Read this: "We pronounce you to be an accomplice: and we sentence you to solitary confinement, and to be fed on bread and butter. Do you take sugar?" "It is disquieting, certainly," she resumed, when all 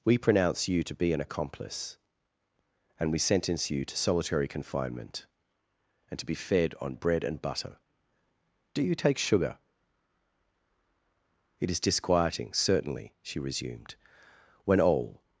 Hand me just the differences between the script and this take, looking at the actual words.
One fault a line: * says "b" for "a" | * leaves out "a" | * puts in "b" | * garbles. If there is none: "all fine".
all fine